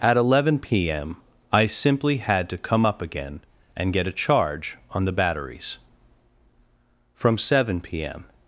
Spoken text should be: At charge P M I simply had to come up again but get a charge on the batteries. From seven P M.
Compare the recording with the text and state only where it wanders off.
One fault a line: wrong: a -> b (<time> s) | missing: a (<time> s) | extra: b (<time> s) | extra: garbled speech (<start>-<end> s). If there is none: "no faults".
wrong: charge -> eleven (0.2 s)
wrong: but -> and (3.7 s)